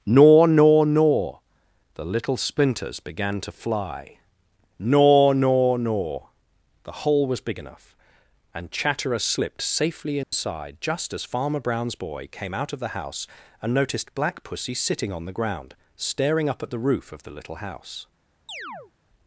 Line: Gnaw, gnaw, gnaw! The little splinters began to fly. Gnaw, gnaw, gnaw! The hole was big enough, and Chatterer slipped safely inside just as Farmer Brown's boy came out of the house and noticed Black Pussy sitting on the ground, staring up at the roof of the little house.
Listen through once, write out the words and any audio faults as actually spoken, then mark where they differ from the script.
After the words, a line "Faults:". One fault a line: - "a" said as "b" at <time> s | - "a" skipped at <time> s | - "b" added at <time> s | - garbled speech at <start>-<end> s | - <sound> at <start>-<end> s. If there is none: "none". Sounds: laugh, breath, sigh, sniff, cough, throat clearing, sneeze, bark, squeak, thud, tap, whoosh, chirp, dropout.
Gnaw, gnaw, gnaw! The little splinters began to fly. Gnaw, gnaw, gnaw! The hole was big enough, and Chatterer slipped safely inside just as Farmer Brown's boy came out of the house and noticed Black Pussy sitting on the ground, staring up at the roof of the little house.
Faults:
- dropout at 10.2-10.3 s
- chirp at 18.5-18.9 s